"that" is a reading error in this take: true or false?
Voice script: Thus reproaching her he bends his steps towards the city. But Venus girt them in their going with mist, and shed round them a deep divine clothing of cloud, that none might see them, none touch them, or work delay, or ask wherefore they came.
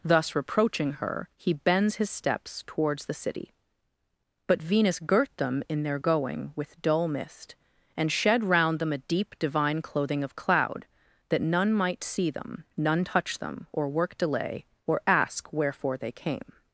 false